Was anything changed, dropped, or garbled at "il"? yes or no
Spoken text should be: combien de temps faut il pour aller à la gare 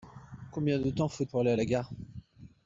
yes